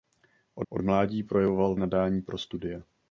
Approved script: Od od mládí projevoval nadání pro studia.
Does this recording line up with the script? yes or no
yes